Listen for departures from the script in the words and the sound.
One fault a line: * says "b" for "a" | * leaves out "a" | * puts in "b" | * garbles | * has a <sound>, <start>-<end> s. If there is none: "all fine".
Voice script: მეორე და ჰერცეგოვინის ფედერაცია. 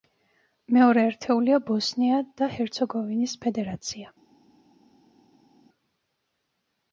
* puts in "ერთეულია ბოსნია"